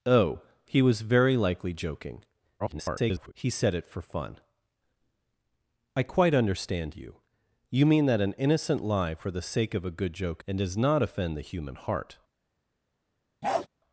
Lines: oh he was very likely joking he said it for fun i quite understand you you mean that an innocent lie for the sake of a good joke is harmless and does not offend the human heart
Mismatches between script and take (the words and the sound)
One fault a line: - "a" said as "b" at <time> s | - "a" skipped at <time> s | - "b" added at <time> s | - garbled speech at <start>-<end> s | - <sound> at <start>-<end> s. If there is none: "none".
- garbled speech at 2.6-3.3 s
- "is harmless" skipped at 10.4 s
- bark at 13.4-13.7 s